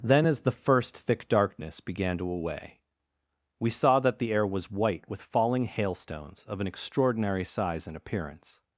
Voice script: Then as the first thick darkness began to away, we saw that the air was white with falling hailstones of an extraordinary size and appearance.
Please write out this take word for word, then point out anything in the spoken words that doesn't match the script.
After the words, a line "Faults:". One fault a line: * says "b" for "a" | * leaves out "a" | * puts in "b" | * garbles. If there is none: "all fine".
Then as the first thick darkness began to away, we saw that the air was white with falling hailstones of an extraordinary size and appearance.
Faults:
all fine